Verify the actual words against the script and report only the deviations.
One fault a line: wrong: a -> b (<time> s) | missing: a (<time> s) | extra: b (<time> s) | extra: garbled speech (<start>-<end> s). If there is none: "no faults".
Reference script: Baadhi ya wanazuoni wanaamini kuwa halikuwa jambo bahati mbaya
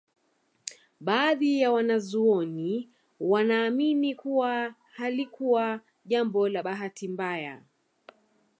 extra: la (6.5 s)